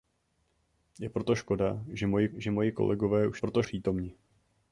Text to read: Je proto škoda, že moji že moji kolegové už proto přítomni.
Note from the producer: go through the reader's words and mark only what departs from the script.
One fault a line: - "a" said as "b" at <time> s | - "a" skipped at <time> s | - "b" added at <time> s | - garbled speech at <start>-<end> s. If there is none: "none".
none